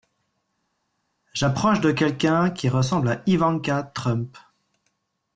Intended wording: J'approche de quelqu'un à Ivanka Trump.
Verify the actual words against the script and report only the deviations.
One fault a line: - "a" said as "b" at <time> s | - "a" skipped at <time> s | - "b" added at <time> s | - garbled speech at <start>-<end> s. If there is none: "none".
- "qui ressemble" added at 2.5 s